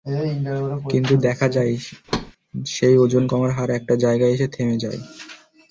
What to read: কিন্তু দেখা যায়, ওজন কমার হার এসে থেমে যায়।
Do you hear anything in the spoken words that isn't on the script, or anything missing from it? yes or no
yes